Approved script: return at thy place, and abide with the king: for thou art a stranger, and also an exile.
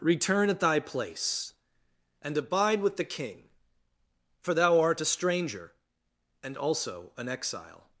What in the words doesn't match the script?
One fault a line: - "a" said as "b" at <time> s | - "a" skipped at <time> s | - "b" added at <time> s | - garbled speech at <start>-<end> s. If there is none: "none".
none